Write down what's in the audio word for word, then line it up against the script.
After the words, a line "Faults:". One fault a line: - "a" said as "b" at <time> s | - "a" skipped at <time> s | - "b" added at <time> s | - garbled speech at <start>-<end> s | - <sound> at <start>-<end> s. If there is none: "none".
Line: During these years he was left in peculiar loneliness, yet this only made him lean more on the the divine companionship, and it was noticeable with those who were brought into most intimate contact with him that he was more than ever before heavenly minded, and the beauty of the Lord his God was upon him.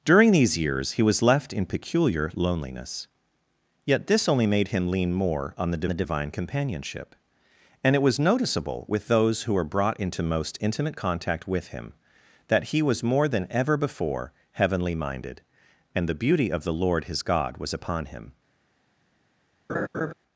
During these years he was left in peculiar loneliness, yet this only made him lean more on the the divine companionship, and it was noticeable with those who were brought into most intimate contact with him that he was more than ever before heavenly minded, and the beauty of the Lord his God was upon him.
Faults:
- laugh at 19.7-20.1 s